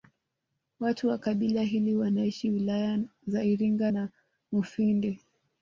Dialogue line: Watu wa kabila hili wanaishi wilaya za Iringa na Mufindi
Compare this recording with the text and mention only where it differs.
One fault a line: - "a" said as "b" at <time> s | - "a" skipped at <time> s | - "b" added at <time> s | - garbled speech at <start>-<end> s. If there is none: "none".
none